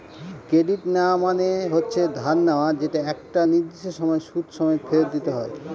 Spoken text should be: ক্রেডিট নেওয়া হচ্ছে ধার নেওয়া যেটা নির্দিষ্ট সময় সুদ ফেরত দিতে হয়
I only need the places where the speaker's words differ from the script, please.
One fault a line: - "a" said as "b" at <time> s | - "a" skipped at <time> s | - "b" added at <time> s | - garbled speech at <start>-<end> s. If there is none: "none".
- "মানে" added at 1.2 s
- "একটা" added at 3.1 s
- "সমেত" added at 4.5 s